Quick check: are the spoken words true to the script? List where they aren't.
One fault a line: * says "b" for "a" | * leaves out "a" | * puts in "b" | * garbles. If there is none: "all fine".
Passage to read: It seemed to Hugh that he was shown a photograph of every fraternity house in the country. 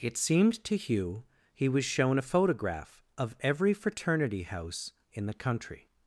* leaves out "that"